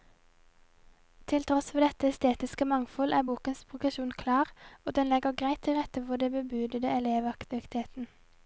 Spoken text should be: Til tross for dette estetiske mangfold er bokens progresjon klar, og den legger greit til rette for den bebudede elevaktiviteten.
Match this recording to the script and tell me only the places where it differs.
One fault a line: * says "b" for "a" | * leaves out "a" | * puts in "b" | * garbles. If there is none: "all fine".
all fine